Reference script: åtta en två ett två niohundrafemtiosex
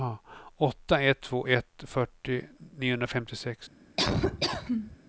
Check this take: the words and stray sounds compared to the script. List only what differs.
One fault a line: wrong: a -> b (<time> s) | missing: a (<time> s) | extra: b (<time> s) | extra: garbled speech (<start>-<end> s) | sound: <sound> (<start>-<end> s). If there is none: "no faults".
wrong: en -> ett (1.0 s)
wrong: två -> fyrtio (1.9 s)
sound: laugh (4.0-5.0 s)